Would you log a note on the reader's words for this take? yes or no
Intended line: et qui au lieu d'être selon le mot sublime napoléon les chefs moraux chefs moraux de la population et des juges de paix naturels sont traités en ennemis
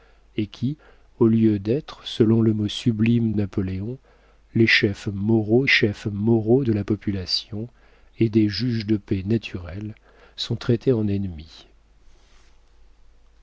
no